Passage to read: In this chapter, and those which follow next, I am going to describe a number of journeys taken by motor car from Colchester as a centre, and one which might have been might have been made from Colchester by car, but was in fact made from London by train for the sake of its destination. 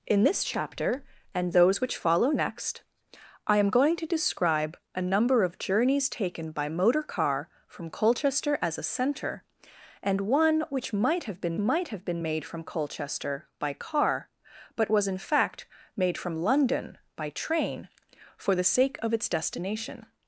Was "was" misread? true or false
false